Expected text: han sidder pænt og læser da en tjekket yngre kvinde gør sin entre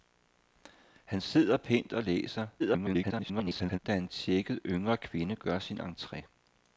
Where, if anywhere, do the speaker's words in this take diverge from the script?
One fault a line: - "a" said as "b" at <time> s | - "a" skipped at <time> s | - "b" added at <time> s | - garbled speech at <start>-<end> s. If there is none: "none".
- garbled speech at 2.6-3.8 s